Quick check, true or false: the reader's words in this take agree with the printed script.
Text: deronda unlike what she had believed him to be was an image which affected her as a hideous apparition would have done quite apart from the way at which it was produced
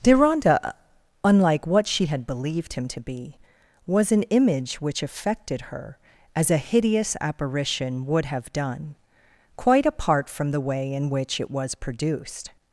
false